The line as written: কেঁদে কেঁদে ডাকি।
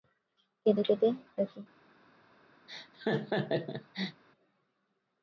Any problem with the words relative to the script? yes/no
no